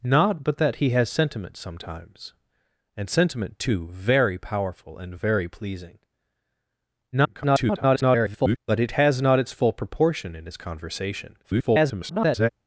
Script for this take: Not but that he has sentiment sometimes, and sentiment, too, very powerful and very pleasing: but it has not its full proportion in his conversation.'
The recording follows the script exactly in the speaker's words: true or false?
false